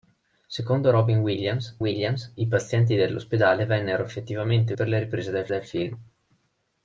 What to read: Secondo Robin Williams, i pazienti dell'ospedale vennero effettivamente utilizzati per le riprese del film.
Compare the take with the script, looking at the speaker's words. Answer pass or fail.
fail